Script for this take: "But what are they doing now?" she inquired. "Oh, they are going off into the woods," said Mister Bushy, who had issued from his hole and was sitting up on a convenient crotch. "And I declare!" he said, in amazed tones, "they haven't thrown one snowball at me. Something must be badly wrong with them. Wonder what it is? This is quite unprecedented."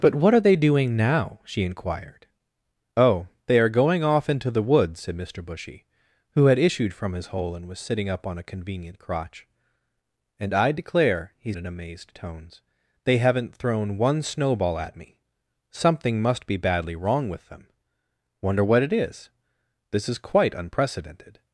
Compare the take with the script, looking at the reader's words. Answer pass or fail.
fail